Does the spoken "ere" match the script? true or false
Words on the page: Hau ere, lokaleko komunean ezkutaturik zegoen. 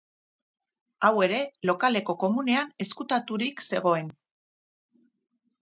true